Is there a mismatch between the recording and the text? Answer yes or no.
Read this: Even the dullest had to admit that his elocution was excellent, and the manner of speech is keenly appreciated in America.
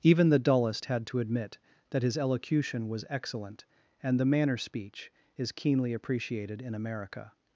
yes